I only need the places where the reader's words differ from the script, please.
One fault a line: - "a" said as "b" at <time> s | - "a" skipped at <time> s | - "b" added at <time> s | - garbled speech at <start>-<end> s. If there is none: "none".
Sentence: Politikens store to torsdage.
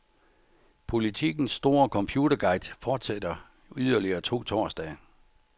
- "computerguide fortsætter yderligere" added at 1.9 s